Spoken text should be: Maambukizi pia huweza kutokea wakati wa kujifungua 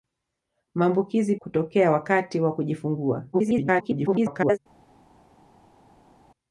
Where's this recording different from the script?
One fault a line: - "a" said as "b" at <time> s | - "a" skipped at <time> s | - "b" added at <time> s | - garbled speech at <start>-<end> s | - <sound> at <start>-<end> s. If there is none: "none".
- "pia huweza" skipped at 1.4 s
- garbled speech at 3.3-4.6 s